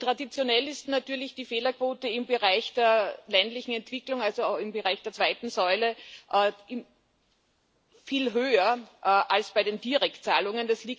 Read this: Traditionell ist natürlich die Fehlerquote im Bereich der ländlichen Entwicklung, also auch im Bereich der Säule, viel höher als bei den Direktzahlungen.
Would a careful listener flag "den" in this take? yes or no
no